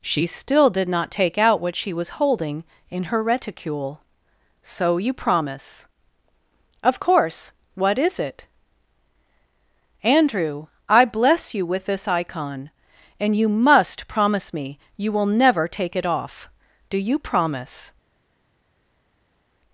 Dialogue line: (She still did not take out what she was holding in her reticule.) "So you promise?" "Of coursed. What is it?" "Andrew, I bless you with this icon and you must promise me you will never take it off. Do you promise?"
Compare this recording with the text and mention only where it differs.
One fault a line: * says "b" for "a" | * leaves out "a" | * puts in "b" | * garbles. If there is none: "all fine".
* says "course" for "coursed"